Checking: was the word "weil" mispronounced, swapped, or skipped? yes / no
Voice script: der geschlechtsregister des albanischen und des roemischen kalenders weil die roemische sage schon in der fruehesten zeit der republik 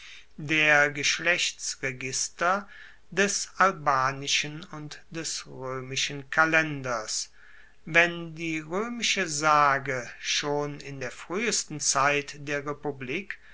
yes